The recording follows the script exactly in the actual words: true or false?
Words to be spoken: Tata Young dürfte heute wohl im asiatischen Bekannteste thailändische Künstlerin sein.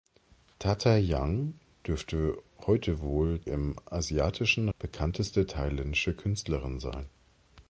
true